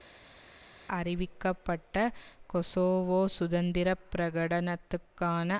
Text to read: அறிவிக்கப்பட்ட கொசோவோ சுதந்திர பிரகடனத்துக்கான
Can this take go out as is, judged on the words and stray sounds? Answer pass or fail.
pass